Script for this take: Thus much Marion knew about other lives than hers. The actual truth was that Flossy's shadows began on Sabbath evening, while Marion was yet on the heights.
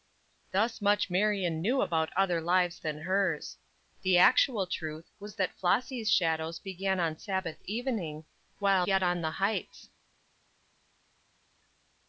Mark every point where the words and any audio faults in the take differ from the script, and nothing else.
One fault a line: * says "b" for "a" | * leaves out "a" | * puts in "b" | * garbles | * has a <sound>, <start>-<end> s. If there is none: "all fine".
* leaves out "Marion was"